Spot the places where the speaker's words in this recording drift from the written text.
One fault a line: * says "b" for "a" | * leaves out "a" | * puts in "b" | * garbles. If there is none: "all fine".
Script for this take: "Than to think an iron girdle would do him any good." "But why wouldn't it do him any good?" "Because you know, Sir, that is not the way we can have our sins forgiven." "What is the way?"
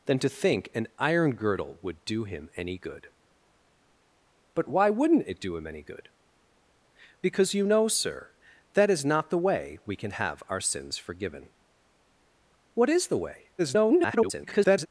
* garbles